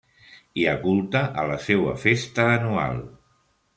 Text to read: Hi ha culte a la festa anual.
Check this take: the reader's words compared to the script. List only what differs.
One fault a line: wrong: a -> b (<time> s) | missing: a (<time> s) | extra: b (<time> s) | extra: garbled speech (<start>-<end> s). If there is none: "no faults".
extra: seua (1.6 s)